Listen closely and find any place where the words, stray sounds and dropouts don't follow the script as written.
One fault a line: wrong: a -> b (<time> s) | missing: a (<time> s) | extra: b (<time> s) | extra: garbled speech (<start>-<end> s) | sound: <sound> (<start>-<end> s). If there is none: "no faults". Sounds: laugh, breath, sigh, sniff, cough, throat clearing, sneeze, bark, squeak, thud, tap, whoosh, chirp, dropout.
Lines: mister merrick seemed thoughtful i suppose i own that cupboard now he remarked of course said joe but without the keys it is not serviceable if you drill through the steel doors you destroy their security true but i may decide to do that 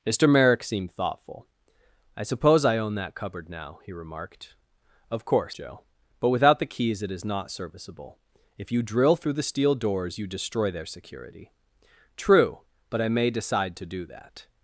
missing: said (5.5 s)